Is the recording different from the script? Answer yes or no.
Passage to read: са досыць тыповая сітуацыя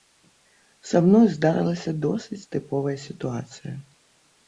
yes